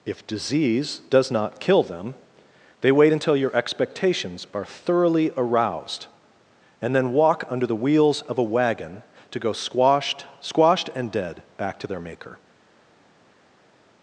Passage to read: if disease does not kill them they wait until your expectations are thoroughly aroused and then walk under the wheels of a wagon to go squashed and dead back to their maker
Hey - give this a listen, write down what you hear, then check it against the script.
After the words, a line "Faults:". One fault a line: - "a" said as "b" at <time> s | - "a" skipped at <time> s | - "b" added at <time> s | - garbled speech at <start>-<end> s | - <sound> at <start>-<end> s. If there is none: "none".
if disease does not kill them they wait until your expectations are thoroughly aroused and then walk under the wheels of a wagon to go squashed squashed and dead back to their maker
Faults:
- "squashed" added at 10.4 s